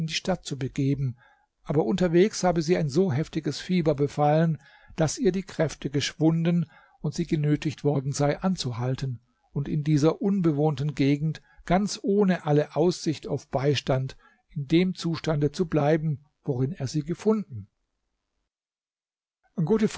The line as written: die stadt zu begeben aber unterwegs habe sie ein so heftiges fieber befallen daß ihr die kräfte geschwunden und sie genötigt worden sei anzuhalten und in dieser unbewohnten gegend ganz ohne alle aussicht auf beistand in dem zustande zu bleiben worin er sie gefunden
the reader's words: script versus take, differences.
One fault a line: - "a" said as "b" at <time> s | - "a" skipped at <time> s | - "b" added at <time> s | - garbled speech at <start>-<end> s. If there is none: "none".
none